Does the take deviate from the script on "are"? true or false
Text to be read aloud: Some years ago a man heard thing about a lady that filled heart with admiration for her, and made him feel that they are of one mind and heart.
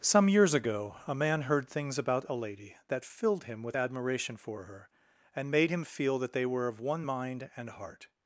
true